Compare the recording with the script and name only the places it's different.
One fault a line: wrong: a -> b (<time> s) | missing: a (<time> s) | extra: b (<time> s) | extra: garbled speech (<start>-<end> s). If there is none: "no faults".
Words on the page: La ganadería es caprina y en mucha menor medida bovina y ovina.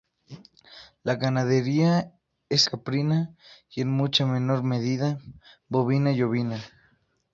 no faults